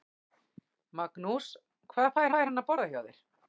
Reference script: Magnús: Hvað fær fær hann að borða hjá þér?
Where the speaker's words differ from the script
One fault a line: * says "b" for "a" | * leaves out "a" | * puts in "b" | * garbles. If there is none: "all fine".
all fine